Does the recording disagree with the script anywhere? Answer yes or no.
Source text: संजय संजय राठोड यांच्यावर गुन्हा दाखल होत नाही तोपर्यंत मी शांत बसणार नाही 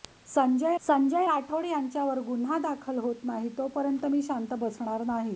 no